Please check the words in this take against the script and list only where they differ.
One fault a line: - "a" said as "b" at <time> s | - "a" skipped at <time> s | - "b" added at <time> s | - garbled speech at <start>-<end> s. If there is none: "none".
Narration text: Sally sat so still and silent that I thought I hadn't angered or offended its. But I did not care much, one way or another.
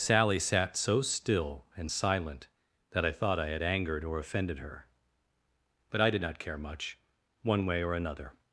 - "hadn't" said as "had" at 3.5 s
- "its" said as "her" at 4.6 s